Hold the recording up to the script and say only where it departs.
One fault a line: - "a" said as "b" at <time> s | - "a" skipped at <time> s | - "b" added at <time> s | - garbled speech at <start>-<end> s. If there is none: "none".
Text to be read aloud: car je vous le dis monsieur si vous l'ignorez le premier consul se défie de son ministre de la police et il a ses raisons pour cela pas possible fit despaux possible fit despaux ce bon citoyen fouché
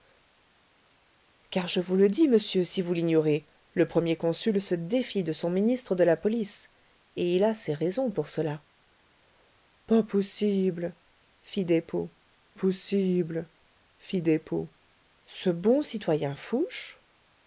none